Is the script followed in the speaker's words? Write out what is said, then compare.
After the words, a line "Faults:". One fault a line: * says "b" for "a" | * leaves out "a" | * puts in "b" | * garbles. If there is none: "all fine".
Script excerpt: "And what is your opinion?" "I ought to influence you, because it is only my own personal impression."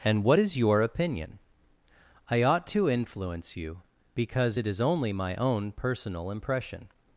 "And what is your opinion?" "I ought to influence you, because it is only my own personal impression."
Faults:
all fine